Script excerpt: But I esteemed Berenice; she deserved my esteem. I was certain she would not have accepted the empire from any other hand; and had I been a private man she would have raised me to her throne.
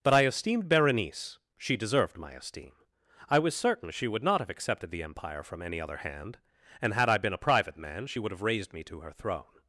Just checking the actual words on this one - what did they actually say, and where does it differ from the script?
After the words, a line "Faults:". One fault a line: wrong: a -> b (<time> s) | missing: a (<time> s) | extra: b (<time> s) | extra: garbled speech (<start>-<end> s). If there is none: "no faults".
But I esteemed Berenice; she deserved my esteem. I was certain she would not have accepted the empire from any other hand; and had I been a private man she would have raised me to her throne.
Faults:
no faults